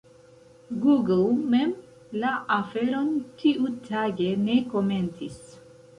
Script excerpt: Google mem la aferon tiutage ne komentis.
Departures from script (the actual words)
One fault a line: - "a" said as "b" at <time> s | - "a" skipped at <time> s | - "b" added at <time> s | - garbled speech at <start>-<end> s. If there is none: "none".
none